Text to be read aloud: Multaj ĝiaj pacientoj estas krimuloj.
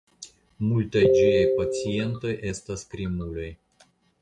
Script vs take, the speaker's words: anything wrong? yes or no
no